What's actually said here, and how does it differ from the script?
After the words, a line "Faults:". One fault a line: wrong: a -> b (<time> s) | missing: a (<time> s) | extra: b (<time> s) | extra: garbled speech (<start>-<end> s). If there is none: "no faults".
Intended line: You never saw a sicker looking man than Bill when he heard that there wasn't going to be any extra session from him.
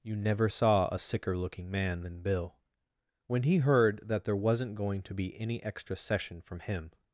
You never saw a sicker looking man than Bill when he heard that there wasn't going to be any extra session from him.
Faults:
no faults